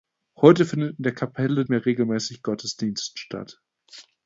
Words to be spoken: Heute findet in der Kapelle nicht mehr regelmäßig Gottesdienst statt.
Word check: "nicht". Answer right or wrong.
wrong